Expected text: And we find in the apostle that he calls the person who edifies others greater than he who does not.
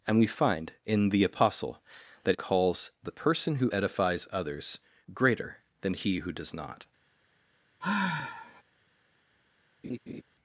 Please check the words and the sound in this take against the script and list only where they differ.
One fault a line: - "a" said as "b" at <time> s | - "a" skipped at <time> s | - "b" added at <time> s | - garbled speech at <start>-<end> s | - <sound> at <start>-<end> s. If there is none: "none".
- "he" skipped at 2.4 s
- sigh at 7.8-8.6 s
- laugh at 9.8-10.2 s